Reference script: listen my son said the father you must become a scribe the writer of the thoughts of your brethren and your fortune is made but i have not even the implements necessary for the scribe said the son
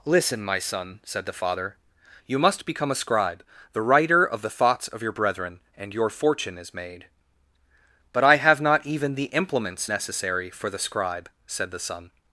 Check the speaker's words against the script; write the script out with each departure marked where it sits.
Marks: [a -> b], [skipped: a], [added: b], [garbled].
listen my son said the father you must become a scribe the writer of the thoughts of your brethren and your fortune is made but i have not even the implements necessary for the scribe said the son